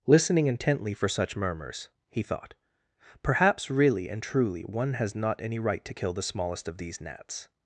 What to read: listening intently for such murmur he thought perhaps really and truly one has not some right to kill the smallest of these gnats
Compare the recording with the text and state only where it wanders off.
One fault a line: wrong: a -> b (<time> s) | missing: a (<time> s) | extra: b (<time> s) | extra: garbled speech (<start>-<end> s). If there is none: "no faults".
wrong: murmur -> murmurs (1.4 s)
wrong: some -> any (5.4 s)